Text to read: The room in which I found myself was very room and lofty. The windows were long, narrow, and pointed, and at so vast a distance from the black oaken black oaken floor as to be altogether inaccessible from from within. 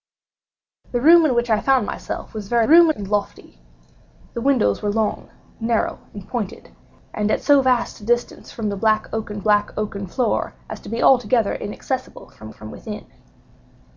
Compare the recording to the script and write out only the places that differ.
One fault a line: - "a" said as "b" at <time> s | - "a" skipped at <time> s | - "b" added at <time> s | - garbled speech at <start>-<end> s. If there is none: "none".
none